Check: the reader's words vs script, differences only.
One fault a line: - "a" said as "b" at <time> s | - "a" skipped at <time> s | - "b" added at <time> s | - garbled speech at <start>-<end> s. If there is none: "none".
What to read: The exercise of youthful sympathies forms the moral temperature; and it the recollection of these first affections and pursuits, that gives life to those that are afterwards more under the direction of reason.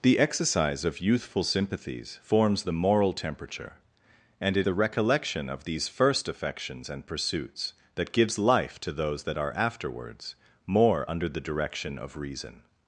none